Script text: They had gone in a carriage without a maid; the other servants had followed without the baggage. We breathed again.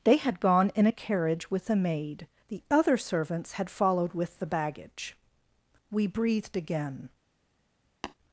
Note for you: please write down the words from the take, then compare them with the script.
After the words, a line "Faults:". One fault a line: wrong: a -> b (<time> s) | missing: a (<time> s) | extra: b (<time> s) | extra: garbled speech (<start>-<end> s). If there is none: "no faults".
They had gone in a carriage with a maid; the other servants had followed with the baggage. We breathed again.
Faults:
wrong: without -> with (1.5 s)
wrong: without -> with (4.1 s)